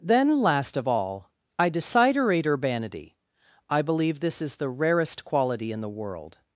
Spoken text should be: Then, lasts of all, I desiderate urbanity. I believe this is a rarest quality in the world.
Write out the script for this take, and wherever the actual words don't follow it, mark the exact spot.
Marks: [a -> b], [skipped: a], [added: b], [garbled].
Then, [lasts -> last] of all, I desiderate urbanity. I believe this is [a -> the] rarest quality in the world.